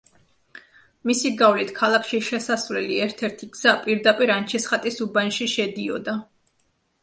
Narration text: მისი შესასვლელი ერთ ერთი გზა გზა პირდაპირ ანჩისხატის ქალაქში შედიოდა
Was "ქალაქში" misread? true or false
true